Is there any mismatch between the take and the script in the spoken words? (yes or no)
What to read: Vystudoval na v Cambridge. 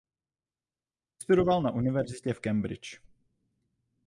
yes